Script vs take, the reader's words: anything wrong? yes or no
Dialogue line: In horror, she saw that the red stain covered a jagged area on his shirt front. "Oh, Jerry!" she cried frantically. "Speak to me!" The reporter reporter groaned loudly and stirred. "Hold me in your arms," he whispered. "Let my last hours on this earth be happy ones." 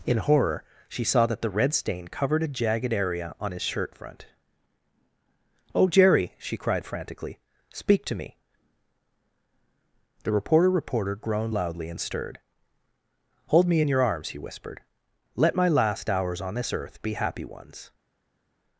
no